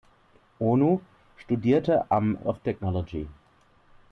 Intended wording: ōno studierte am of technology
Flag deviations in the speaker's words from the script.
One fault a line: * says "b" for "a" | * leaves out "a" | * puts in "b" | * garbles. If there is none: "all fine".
all fine